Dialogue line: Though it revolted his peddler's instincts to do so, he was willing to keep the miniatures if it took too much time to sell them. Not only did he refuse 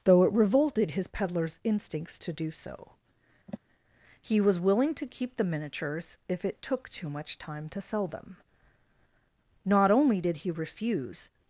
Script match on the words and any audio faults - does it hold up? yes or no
no